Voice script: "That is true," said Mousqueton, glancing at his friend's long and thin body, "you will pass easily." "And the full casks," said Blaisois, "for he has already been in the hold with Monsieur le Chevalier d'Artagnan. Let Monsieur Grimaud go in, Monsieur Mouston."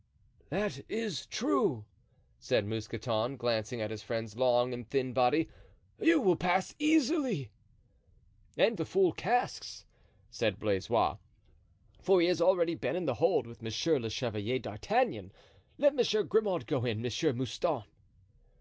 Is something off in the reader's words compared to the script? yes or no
no